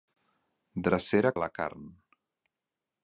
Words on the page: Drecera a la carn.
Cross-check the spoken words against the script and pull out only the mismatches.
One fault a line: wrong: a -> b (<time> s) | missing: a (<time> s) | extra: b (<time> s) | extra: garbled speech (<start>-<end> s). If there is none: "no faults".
no faults